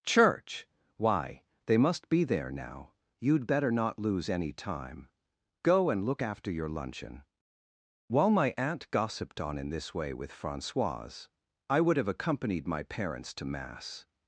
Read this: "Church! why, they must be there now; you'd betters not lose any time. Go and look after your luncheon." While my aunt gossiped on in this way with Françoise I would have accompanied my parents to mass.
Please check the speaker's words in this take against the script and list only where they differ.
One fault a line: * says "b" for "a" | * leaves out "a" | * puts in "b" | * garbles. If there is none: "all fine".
* says "better" for "betters"